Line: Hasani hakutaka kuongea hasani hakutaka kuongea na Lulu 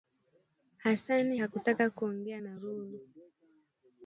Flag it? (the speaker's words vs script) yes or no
yes